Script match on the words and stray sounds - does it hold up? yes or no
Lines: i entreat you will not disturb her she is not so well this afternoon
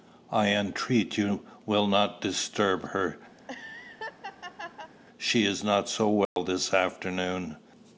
no